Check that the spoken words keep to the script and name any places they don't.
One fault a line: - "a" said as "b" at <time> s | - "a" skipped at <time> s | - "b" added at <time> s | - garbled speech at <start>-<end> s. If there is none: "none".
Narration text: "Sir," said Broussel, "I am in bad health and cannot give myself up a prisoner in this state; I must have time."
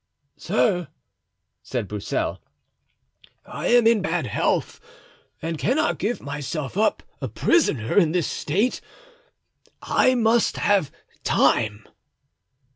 none